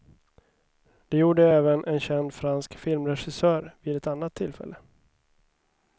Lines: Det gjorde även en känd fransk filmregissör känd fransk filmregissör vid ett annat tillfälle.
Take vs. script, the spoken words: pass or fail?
fail